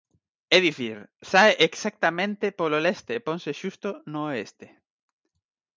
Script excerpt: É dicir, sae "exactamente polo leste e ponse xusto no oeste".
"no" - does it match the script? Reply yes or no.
yes